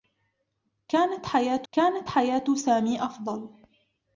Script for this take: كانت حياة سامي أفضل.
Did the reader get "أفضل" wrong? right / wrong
right